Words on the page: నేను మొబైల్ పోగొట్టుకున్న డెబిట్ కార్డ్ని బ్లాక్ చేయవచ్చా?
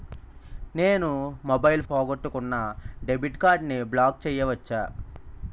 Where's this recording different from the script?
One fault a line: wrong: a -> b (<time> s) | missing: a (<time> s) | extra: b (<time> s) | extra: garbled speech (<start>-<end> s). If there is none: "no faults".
no faults